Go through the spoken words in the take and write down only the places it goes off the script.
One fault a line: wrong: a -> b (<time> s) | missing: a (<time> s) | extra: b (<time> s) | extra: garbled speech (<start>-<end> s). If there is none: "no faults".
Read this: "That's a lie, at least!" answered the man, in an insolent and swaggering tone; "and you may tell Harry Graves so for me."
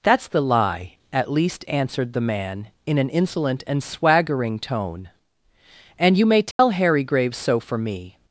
wrong: a -> the (0.3 s)